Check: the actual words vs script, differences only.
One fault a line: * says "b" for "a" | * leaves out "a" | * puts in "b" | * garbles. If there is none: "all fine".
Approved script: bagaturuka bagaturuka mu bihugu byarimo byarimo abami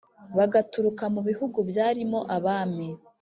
* leaves out "bagaturuka"
* leaves out "byarimo"